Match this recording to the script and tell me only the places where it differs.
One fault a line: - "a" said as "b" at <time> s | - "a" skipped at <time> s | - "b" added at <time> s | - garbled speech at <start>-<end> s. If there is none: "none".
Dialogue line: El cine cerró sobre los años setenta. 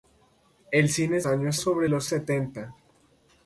- "cerró" said as "años" at 1.3 s
- "años" skipped at 2.1 s